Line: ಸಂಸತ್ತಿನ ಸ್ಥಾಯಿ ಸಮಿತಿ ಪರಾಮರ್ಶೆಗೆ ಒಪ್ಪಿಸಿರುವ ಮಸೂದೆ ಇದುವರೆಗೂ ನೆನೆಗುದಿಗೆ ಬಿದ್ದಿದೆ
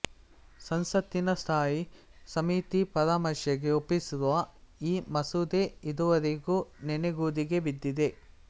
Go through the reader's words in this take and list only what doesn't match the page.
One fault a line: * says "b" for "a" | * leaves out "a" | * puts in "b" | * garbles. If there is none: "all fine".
* puts in "ಈ"